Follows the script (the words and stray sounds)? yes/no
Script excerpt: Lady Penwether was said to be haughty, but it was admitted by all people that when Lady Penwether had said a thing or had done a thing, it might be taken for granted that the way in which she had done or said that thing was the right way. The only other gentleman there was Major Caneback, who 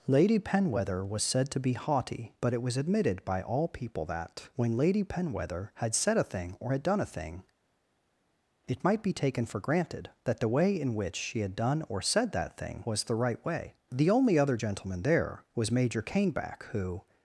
yes